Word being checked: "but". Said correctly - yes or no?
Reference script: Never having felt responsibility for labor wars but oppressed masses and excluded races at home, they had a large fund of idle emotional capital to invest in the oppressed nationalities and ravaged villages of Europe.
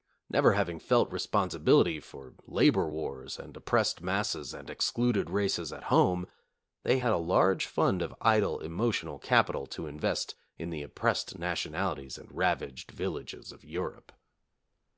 no